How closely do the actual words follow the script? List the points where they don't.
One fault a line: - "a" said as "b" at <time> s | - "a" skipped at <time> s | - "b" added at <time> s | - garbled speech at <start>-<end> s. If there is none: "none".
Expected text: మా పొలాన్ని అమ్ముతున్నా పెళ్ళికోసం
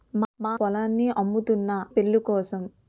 none